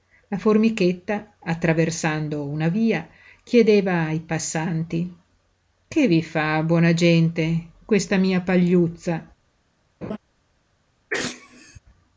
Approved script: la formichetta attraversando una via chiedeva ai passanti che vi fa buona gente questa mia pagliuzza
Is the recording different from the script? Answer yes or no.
no